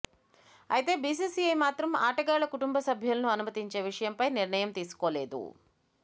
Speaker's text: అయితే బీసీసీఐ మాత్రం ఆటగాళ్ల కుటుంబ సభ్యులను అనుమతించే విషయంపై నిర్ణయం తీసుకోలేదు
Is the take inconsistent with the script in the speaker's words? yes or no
no